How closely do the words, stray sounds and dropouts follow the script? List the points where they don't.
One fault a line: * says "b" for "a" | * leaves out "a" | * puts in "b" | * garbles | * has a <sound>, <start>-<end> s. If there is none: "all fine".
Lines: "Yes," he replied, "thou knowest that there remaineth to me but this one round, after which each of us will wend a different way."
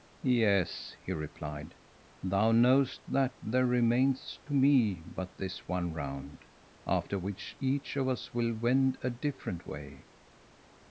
all fine